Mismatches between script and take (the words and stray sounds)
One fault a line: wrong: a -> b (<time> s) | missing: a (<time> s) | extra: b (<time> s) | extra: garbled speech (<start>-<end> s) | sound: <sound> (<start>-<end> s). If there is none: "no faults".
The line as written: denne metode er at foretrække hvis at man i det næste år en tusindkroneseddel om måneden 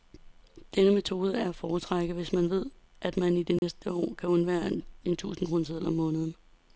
extra: man ved (2.3 s)
sound: dropout (3.6-3.6 s)
extra: kan undvære (4.2 s)